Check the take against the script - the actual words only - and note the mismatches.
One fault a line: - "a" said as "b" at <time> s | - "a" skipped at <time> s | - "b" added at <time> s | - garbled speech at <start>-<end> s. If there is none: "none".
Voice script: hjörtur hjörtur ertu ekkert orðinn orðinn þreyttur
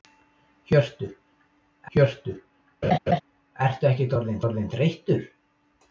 none